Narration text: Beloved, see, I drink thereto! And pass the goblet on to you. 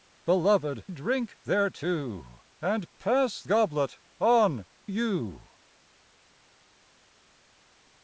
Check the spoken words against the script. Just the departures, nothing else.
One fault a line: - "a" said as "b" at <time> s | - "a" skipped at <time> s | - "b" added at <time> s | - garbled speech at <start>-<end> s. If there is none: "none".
- "see I" skipped at 0.8 s
- "the" skipped at 3.4 s
- "to" skipped at 4.6 s